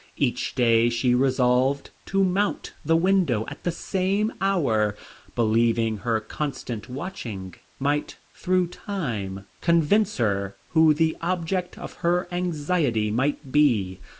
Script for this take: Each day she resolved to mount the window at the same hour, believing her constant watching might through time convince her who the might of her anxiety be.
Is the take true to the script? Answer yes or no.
no